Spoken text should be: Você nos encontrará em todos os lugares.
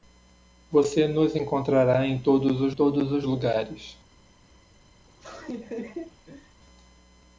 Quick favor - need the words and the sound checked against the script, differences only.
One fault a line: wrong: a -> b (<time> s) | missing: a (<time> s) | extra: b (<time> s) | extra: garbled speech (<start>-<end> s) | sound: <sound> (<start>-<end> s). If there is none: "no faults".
extra: todos os (2.7 s)
sound: laugh (5.0-6.6 s)